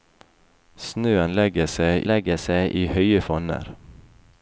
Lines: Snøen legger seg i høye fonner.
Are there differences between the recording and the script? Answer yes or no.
yes